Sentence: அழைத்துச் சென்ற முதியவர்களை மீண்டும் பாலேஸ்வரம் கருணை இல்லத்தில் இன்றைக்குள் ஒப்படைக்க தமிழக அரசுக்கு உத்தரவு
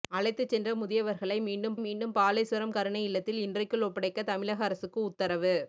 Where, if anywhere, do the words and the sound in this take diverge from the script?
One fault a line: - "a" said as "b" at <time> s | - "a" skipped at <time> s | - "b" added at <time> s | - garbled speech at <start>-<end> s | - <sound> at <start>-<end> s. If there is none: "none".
- "மீண்டும்" added at 1.8 s